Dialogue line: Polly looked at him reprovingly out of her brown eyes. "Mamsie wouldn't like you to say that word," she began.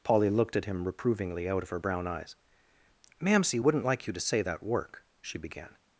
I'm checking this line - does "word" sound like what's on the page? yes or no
no